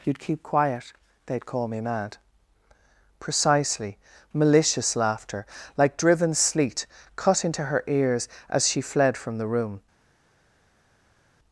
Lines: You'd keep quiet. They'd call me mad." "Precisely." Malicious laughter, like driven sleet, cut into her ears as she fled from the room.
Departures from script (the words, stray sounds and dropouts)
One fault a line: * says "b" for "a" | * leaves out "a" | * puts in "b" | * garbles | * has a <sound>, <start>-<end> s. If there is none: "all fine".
all fine